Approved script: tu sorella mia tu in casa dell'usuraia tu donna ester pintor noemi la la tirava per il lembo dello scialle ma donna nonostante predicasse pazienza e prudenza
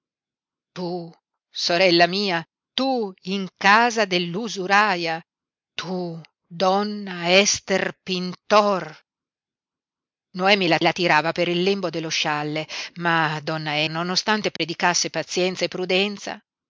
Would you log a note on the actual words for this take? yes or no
no